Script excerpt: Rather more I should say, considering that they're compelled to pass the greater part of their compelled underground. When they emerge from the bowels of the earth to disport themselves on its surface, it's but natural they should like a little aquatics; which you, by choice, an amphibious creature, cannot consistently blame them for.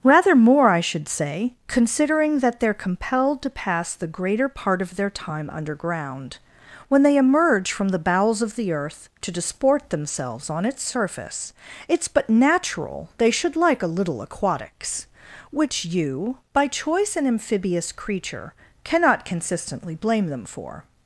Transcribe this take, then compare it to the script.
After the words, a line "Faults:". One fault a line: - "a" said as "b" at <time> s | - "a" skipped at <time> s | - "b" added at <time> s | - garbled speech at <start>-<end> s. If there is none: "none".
Rather more I should say, considering that they're compelled to pass the greater part of their time underground. When they emerge from the bowels of the earth to disport themselves on its surface, it's but natural they should like a little aquatics; which you, by choice, an amphibious creature, cannot consistently blame them for.
Faults:
- "compelled" said as "time" at 5.1 s